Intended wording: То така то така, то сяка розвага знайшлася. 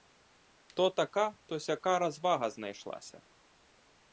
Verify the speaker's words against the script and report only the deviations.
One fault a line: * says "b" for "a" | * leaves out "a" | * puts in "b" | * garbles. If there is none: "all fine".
* leaves out "така то"